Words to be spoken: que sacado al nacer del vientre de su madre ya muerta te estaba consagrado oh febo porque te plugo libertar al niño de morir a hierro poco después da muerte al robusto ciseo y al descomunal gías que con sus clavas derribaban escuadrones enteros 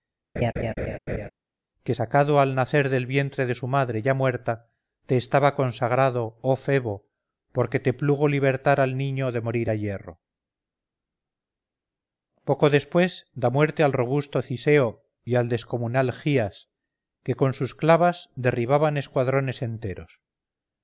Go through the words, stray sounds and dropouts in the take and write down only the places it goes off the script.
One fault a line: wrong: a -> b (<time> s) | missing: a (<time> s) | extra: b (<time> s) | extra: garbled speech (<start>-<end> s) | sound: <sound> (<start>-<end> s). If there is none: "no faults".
sound: laugh (0.4-1.3 s)